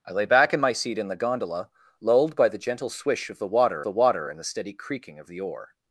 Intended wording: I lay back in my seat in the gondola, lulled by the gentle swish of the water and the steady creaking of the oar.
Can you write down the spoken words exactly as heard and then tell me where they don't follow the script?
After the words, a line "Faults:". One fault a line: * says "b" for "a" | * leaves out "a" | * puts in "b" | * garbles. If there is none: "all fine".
I lay back in my seat in the gondola, lulled by the gentle swish of the water the water and the steady creaking of the oar.
Faults:
* puts in "the water"